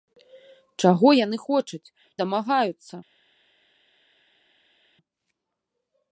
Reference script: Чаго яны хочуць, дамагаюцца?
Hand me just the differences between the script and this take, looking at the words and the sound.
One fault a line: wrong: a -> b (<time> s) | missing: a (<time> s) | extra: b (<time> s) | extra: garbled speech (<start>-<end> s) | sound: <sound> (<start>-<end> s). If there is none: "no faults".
no faults